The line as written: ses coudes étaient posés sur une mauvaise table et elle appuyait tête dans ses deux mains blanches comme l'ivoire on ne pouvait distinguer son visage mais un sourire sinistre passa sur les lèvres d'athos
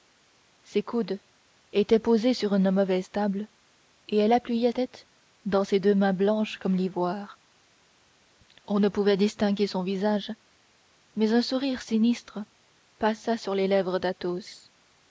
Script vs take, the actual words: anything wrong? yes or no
no